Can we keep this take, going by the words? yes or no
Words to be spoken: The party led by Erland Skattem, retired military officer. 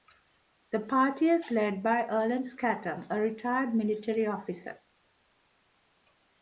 no